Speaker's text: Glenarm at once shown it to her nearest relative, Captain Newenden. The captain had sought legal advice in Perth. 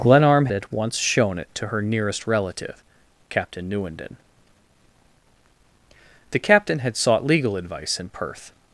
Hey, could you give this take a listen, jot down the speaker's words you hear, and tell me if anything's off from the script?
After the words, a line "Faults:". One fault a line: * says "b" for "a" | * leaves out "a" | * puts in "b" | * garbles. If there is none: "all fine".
Glenarm at once shown it to her nearest relative, Captain Newenden. The captain had sought legal advice in Perth.
Faults:
all fine